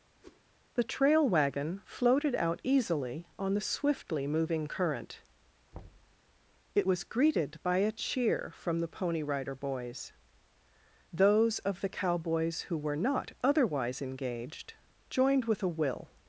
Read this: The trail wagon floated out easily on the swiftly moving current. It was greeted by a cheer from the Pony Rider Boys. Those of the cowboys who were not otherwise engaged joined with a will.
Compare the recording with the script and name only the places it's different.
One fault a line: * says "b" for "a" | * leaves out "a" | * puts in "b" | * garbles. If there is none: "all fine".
all fine